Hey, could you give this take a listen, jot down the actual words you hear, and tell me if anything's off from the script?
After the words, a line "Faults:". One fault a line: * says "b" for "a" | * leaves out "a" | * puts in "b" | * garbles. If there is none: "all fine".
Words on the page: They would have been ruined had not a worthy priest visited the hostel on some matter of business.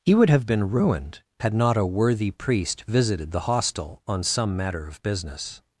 He would have been ruined had not a worthy priest visited the hostel on some matter of business.
Faults:
* says "He" for "They"